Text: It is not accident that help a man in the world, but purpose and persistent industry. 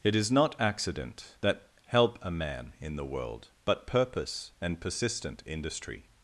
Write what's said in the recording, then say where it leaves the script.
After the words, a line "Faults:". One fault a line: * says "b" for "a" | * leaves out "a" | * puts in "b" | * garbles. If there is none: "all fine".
It is not accident that help a man in the world, but purpose and persistent industry.
Faults:
all fine